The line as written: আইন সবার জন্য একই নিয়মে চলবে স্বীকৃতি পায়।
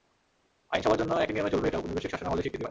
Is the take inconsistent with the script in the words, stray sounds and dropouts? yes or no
yes